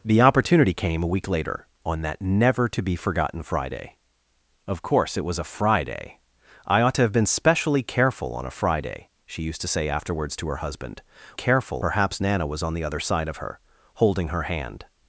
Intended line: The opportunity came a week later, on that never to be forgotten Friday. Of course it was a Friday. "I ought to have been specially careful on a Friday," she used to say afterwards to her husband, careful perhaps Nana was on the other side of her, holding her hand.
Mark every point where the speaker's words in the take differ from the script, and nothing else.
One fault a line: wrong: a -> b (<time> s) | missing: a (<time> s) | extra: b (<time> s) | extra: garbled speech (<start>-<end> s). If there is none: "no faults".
no faults